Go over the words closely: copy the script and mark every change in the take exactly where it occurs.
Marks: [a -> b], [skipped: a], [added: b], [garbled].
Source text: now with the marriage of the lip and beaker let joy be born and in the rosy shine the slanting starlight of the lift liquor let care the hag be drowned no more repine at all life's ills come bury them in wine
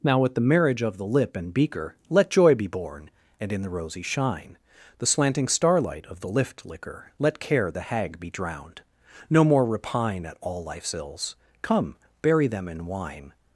now with the marriage of the lip and beaker let joy be born and in the rosy shine the slanting starlight of the lift liquor let care the hag be drowned no more repine at all life's ills come bury them in wine